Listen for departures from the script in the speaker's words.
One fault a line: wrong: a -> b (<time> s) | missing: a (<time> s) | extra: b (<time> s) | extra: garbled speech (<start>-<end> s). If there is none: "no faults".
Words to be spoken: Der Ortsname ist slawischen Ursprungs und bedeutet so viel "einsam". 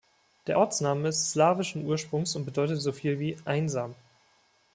extra: wie (3.2 s)